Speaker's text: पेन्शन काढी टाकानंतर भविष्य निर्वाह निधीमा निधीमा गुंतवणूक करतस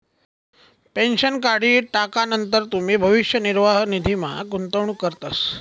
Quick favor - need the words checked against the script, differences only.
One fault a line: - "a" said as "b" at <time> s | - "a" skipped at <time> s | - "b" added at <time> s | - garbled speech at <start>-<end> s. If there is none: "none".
- "तुमी" added at 2.7 s
- "निधीमा" skipped at 4.3 s